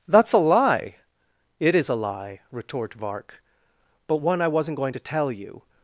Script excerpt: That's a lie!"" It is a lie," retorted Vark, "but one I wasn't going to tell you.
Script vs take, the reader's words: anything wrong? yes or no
yes